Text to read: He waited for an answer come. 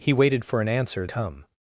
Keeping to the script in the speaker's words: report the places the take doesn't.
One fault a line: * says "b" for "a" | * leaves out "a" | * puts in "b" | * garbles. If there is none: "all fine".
all fine